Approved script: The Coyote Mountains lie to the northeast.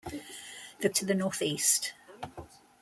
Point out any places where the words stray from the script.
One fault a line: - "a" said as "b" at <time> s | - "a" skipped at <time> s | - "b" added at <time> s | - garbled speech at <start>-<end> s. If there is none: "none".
- "Coyote Mountains lie" skipped at 0.9 s